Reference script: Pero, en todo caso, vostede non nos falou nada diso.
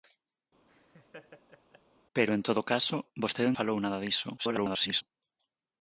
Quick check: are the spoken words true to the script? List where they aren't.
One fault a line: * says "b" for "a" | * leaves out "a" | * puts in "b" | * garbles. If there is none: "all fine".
* leaves out "non nos"
* garbles